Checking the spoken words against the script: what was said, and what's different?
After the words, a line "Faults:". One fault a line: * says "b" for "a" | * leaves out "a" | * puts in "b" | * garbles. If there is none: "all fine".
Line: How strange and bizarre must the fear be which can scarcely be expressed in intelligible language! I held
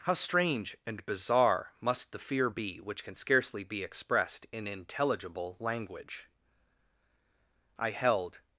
How strange and bizarre must the fear be which can scarcely be expressed in intelligible language! I held
Faults:
all fine